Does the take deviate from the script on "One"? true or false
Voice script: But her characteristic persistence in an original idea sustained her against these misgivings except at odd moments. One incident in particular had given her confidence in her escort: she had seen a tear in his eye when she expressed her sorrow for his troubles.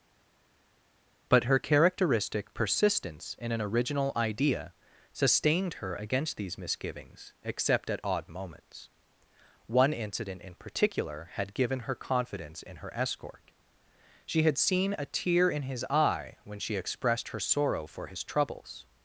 false